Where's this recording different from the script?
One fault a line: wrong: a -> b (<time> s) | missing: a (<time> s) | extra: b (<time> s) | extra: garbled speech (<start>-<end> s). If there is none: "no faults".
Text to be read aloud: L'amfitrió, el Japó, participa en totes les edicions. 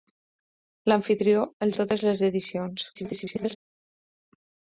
missing: Japó participa (1.8 s)
extra: garbled speech (2.9-3.6 s)